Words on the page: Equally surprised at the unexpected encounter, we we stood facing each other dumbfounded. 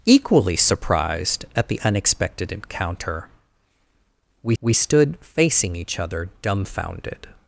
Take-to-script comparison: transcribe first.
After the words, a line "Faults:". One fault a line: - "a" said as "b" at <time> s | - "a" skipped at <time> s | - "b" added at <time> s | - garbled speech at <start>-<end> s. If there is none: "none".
Equally surprised at the unexpected encounter, we we stood facing each other dumbfounded.
Faults:
none